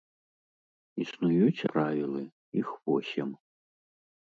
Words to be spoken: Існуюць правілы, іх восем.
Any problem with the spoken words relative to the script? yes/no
no